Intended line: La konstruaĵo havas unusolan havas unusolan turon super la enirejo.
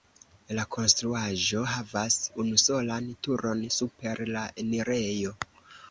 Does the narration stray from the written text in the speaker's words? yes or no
yes